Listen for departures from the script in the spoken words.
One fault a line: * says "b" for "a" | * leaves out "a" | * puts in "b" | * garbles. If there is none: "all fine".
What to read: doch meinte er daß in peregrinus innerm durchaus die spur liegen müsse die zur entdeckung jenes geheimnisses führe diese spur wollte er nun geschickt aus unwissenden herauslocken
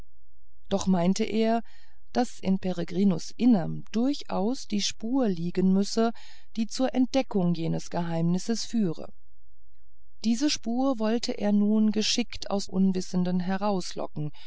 all fine